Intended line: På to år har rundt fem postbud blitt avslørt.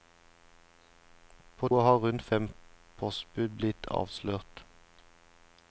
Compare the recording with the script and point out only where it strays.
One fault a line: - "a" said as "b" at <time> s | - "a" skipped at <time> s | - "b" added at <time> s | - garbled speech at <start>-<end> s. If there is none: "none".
- "to" skipped at 1.7 s